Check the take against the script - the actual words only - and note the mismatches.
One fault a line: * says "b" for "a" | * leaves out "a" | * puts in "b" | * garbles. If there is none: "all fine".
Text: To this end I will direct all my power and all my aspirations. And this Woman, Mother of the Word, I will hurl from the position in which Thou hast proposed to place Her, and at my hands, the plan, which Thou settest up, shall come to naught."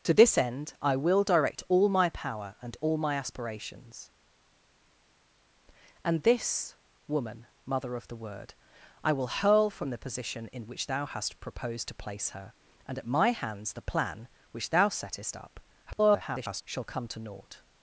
* garbles